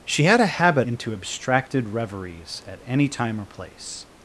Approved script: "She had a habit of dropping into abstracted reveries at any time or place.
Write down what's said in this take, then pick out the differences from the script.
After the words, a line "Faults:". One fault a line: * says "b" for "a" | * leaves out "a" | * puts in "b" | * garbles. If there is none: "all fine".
"She had a habit into abstracted reveries at any time or place.
Faults:
* leaves out "of dropping"